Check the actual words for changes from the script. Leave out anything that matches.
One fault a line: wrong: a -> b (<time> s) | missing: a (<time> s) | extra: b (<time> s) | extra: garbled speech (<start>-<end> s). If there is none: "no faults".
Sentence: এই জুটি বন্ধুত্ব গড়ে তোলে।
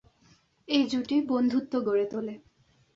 no faults